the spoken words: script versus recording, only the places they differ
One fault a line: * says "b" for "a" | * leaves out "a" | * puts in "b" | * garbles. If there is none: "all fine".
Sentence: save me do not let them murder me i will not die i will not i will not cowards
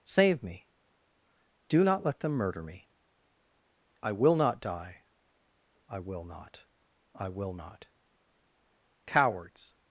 all fine